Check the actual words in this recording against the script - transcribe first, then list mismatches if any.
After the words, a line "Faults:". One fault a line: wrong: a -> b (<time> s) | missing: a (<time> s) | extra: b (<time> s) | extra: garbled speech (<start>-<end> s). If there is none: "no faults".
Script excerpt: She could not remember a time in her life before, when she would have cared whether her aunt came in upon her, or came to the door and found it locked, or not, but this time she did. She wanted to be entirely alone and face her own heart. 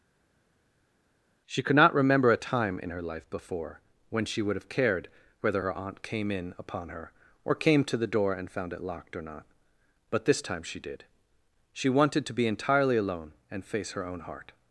She could not remember a time in her life before, when she would have cared whether her aunt came in upon her, or came to the door and found it locked, or not, but this time she did. She wanted to be entirely alone and face her own heart.
Faults:
no faults